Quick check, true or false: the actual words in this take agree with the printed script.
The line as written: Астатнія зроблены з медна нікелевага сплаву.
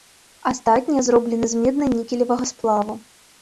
true